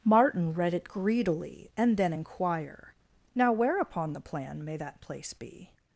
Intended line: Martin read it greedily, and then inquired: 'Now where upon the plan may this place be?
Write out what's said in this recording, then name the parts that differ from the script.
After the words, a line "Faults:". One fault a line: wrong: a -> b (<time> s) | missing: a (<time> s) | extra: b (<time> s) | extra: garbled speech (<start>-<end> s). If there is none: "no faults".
Martin read it greedily, and then inquire: 'Now where upon the plan may that place be?
Faults:
wrong: inquired -> inquire (2.1 s)
wrong: this -> that (4.8 s)